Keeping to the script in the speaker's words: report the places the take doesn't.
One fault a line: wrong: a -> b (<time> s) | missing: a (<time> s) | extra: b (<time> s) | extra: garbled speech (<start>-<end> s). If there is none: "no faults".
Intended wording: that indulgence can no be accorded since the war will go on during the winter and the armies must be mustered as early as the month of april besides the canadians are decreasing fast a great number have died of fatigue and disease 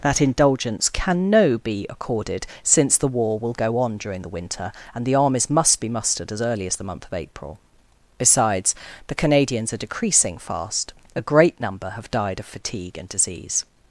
no faults